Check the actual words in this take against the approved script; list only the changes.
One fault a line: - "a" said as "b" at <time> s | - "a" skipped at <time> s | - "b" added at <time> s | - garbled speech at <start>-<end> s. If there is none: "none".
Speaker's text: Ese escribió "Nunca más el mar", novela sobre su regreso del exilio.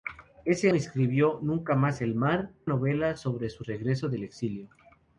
none